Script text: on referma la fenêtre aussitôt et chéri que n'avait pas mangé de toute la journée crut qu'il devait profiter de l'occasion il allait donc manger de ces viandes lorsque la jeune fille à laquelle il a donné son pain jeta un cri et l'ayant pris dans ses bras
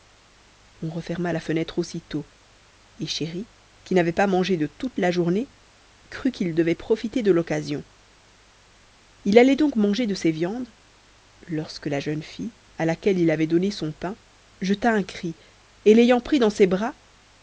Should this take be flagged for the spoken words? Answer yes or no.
yes